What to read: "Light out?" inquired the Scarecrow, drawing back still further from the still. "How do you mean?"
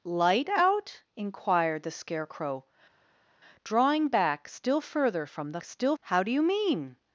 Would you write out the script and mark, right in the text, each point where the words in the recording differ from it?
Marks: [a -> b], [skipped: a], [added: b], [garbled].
"Light out?" inquired the Scarecrow, drawing back still further from the still. "How do you mean?"